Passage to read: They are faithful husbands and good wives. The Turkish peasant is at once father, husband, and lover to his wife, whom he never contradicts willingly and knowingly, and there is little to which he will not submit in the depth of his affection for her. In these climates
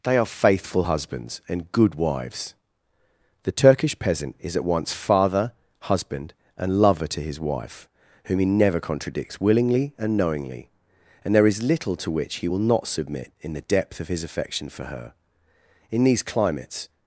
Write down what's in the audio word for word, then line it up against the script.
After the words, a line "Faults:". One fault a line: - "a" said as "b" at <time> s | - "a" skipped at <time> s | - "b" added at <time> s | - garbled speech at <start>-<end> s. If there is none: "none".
They are faithful husbands and good wives. The Turkish peasant is at once father, husband, and lover to his wife, whom he never contradicts willingly and knowingly, and there is little to which he will not submit in the depth of his affection for her. In these climates
Faults:
none